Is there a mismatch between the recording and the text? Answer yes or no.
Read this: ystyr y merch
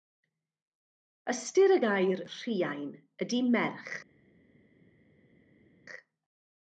yes